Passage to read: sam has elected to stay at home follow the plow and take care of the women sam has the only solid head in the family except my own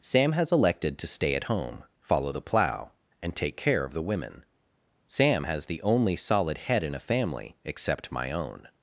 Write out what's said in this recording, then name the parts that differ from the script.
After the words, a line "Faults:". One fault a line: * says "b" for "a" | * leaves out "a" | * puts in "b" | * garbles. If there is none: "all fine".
sam has elected to stay at home follow the plow and take care of the women sam has the only solid head in a family except my own
Faults:
* says "a" for "the"